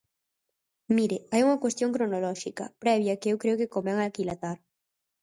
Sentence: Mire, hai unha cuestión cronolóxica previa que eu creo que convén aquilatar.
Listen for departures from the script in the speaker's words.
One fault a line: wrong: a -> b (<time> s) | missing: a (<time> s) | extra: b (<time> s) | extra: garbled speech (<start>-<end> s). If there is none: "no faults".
no faults